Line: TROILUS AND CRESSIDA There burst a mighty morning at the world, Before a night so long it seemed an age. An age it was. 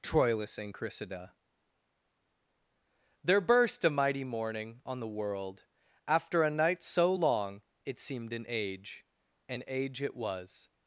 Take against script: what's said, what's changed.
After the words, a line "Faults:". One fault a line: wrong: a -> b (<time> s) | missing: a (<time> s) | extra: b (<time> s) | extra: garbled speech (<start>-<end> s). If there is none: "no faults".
TROILUS AND CRESSIDA There burst a mighty morning on the world, After a night so long it seemed an age. An age it was.
Faults:
wrong: at -> on (4.9 s)
wrong: Before -> After (6.1 s)